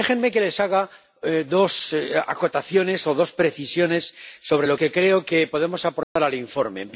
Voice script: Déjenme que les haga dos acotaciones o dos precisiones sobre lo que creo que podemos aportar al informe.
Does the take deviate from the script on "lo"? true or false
false